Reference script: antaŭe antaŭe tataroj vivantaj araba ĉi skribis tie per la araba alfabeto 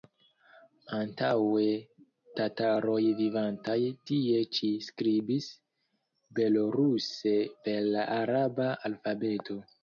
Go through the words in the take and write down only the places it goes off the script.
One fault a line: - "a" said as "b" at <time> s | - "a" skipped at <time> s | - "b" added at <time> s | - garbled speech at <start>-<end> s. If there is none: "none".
- "antaŭe" skipped at 1.6 s
- "araba" said as "tie" at 4.1 s
- "tie" said as "beloruse" at 6.4 s